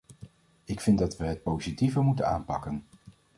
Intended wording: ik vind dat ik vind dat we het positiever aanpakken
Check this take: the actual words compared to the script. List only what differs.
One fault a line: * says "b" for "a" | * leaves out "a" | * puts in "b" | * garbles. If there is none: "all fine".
* leaves out "ik vind dat"
* puts in "moeten"